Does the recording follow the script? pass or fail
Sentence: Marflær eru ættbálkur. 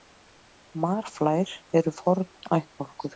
fail